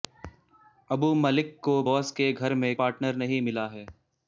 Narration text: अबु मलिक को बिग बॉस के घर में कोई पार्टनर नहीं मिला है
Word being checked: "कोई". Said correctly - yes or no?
no